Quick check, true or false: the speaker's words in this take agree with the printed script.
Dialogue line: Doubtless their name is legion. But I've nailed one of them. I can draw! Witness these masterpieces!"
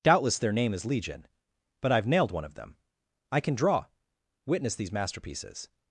true